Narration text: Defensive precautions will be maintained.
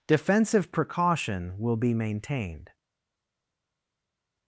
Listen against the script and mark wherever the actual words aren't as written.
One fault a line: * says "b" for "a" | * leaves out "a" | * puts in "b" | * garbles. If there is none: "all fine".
* says "precaution" for "precautions"